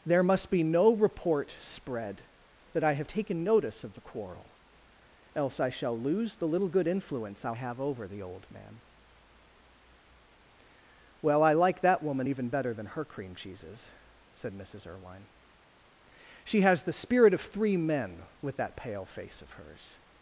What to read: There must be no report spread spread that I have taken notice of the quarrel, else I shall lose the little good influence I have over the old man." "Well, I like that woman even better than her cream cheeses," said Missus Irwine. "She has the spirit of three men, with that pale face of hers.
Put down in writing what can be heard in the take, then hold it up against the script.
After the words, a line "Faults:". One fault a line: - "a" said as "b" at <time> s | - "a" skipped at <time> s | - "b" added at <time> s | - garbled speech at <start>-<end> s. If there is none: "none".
There must be no report spread that I have taken notice of the quarrel, else I shall lose the little good influence I have over the old man." "Well, I like that woman even better than her cream cheeses," said Missus Irwine. "She has the spirit of three men, with that pale face of hers.
Faults:
- "spread" skipped at 2.2 s